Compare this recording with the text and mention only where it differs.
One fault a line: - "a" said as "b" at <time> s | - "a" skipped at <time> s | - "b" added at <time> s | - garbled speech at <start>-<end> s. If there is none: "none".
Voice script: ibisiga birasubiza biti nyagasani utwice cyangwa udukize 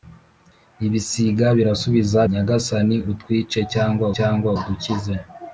- "biti" skipped at 2.2 s
- "cyangwa" added at 4.2 s